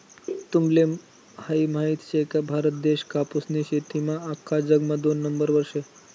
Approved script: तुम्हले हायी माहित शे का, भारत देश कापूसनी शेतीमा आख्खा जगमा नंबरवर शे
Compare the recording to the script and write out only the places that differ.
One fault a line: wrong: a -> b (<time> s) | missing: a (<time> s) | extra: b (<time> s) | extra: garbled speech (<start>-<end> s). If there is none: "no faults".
extra: दोन (5.0 s)